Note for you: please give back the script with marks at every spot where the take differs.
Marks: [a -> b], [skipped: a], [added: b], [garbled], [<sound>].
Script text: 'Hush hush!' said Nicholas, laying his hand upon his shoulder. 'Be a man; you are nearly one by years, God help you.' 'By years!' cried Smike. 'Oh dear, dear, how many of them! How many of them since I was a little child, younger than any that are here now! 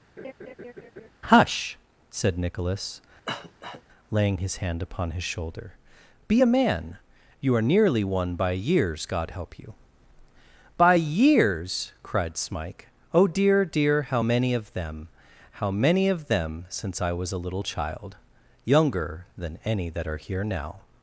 [laugh] 'Hush [skipped: hush!'] said Nicholas, [cough] laying his hand upon his shoulder. 'Be a man; you are nearly one by years, God help you.' 'By years!' cried Smike. 'Oh dear, dear, how many of them! How many of them since I was a little child, younger than any that are here now!